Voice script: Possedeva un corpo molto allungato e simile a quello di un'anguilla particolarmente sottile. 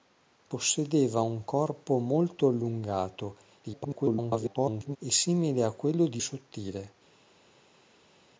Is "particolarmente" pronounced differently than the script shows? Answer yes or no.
yes